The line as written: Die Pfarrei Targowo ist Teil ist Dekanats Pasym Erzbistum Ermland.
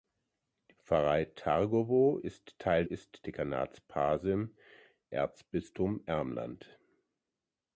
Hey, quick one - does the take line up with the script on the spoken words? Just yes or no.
yes